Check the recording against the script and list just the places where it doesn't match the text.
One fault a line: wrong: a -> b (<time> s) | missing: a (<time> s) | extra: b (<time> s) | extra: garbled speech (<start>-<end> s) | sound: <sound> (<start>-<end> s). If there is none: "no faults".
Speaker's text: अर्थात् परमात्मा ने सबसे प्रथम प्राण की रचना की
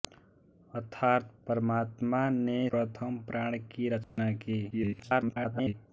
missing: सबसे (2.7 s)
sound: dropout (4.0-4.2 s)
extra: garbled speech (4.7-5.7 s)